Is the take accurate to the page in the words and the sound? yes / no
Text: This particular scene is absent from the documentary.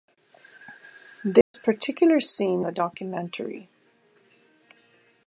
no